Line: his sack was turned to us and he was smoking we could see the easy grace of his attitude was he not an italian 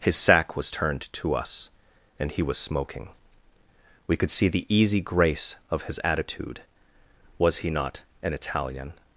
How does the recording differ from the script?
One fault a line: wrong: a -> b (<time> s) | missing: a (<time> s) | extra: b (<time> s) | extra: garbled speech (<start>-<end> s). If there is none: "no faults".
no faults